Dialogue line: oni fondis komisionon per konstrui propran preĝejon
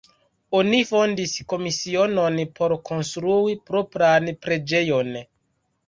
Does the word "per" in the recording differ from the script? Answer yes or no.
yes